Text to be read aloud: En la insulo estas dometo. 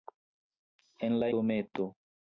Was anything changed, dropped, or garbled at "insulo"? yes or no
yes